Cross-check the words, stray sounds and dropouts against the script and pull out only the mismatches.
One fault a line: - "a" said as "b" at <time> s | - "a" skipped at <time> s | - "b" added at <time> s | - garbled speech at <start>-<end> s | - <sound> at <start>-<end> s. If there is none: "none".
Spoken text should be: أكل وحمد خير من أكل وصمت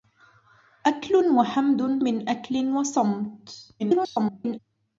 - "خير" skipped at 2.0 s
- garbled speech at 3.8-4.6 s